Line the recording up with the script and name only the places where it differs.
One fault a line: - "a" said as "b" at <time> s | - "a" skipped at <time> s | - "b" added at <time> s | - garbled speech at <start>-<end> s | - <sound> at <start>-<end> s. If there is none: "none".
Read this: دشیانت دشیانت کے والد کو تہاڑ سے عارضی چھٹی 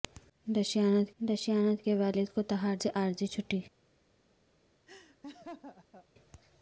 - laugh at 4.9-6.1 s